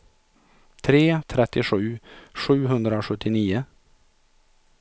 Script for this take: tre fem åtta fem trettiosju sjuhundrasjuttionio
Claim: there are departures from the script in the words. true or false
true